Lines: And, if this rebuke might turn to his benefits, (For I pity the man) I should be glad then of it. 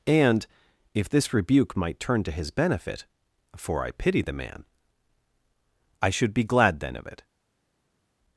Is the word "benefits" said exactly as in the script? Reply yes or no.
no